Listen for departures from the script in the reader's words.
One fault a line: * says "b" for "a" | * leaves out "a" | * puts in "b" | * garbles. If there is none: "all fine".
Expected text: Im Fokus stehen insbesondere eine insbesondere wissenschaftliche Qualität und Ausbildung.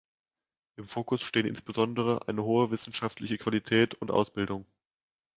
* says "hohe" for "insbesondere"